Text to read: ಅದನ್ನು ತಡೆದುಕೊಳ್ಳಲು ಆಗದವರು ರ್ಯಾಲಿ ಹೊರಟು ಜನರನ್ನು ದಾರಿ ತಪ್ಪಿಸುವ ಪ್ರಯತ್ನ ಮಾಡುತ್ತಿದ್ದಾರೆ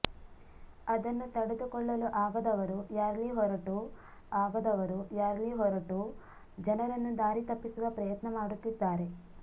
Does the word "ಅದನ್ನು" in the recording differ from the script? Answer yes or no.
no